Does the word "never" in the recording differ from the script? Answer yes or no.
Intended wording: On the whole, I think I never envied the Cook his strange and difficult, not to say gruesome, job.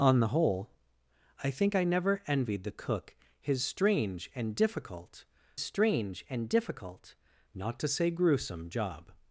no